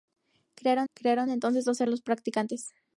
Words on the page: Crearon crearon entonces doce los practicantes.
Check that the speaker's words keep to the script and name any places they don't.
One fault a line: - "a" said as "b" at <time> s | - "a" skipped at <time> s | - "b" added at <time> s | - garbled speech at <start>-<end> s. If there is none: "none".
none